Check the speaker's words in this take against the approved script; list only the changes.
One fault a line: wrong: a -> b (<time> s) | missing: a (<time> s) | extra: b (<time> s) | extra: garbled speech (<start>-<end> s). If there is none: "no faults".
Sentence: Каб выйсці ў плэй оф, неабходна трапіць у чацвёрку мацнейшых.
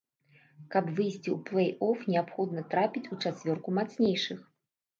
no faults